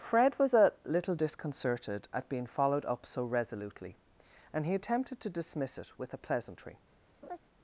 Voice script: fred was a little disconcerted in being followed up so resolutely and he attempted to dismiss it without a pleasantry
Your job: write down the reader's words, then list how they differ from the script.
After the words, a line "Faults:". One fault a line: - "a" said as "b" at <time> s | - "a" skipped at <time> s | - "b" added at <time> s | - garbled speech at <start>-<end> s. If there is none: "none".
fred was a little disconcerted at being followed up so resolutely and he attempted to dismiss it with a pleasantry
Faults:
- "in" said as "at" at 2.1 s
- "without" said as "with" at 6.0 s